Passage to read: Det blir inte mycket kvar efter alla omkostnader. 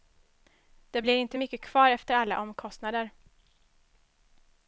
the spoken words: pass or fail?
pass